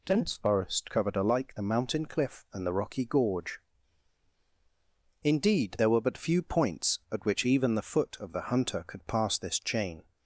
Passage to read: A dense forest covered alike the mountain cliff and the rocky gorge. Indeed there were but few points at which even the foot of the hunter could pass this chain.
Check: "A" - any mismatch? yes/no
yes